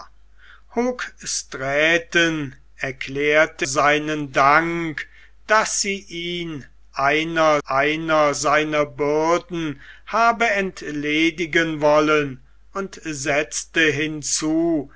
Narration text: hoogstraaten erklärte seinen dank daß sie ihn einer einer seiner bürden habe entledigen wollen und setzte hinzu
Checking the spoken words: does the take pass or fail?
pass